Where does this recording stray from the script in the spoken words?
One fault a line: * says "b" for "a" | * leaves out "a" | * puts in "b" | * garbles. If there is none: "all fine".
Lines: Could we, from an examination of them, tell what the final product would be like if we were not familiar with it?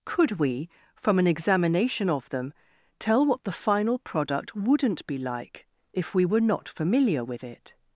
* says "wouldn't" for "would"